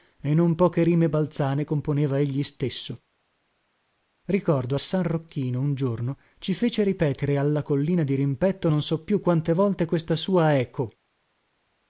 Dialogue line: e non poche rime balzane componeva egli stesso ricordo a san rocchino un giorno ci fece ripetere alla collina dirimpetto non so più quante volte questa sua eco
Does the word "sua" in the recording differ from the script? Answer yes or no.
no